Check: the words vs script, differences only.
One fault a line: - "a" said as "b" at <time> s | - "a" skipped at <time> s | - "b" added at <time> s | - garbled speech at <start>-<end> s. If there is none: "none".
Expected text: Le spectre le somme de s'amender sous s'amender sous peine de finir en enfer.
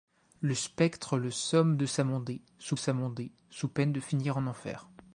none